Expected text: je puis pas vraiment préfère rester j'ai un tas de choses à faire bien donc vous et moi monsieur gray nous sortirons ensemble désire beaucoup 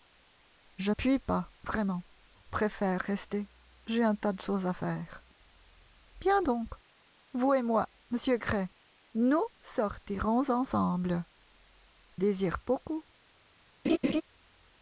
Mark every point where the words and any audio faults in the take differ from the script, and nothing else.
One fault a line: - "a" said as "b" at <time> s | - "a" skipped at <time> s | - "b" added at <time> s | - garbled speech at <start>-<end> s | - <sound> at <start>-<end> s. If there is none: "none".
- laugh at 13.8-14.2 s